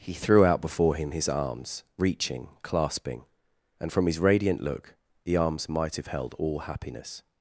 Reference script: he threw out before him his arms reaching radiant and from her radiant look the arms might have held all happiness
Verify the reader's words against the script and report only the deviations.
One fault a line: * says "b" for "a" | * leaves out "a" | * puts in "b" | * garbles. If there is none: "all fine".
* says "clasping" for "radiant"
* says "his" for "her"